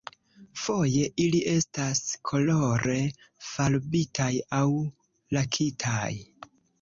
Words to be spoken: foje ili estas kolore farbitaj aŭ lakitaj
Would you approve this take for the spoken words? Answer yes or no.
yes